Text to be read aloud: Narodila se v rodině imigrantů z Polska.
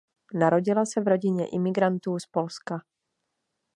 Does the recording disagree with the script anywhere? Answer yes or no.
no